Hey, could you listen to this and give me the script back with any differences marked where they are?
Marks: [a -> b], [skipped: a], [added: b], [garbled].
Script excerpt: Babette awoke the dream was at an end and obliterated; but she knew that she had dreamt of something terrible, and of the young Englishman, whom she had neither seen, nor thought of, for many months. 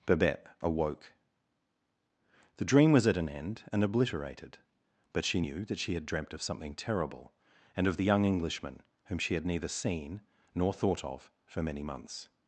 Babette awoke the dream was at an end and obliterated; but she knew that she had dreamt of something terrible, and of the young Englishman, whom she had neither seen, nor thought of, for many months.